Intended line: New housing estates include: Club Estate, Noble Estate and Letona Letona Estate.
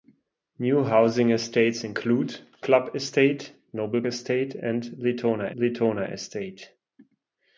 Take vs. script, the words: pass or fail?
pass